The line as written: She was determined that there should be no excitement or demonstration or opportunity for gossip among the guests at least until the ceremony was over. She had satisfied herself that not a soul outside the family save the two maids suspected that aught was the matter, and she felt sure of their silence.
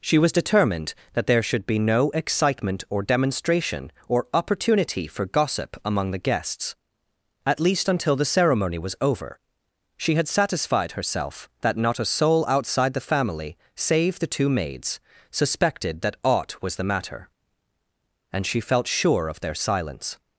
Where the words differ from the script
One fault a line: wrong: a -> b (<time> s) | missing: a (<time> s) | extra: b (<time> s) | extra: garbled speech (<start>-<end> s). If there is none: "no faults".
no faults